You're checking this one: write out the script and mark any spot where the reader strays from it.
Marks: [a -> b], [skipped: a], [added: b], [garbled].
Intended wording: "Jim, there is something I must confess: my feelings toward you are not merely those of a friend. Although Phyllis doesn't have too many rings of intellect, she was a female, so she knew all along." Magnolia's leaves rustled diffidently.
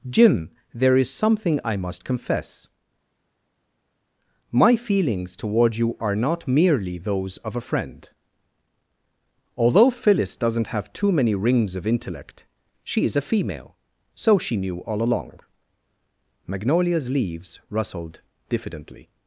"Jim, there is something I must confess: my feelings toward you are not merely those of a friend. Although Phyllis doesn't have too many rings of intellect, she [was -> is] a female, so she knew all along." Magnolia's leaves rustled diffidently.